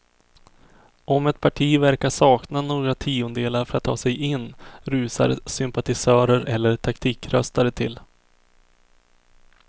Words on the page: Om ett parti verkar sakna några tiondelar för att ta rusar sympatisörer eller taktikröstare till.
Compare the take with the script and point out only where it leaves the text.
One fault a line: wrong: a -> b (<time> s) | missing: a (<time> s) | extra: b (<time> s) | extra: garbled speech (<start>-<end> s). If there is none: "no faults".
extra: sig in (4.0 s)